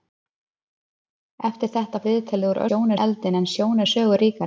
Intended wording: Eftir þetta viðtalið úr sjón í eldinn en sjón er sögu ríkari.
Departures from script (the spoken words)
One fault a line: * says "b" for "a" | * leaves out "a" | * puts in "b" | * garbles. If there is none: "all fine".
all fine